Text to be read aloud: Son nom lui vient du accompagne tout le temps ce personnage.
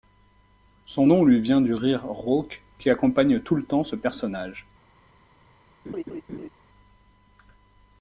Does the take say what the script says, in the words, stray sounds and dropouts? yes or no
no